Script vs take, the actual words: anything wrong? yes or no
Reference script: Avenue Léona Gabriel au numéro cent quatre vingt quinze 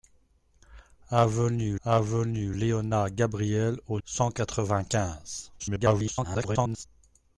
yes